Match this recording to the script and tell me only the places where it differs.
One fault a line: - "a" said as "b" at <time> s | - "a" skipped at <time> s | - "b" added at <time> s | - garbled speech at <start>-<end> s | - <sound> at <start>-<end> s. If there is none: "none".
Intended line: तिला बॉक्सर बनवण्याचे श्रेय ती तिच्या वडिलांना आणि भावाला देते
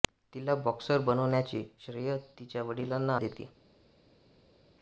- "ती" skipped at 2.2 s
- "आणि भावाला" skipped at 3.2 s